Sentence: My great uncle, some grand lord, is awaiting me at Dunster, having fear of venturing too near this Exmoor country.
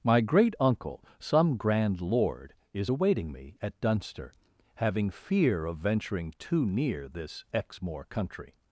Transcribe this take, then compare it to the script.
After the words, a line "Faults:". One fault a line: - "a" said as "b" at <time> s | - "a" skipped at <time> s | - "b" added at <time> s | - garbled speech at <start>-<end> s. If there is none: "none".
My great uncle, some grand lord, is awaiting me at Dunster, having fear of venturing too near this Exmoor country.
Faults:
none